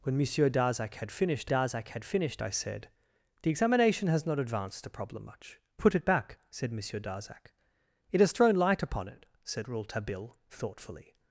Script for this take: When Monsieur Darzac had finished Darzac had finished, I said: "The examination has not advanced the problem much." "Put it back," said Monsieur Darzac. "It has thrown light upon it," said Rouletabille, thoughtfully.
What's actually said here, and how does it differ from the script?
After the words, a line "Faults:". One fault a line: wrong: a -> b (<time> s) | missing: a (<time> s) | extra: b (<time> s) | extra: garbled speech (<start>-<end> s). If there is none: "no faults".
When Monsieur Darzac had finished Darzac had finished, I said: "The examination has not advanced the problem much." "Put it back," said Monsieur Darzac. "It has thrown light upon it," said Rouletabille, thoughtfully.
Faults:
no faults